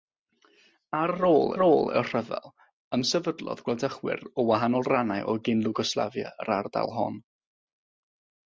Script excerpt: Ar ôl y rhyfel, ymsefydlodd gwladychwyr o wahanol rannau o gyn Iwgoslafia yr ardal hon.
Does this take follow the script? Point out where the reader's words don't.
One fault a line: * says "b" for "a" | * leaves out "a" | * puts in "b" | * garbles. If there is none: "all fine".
* puts in "ôl"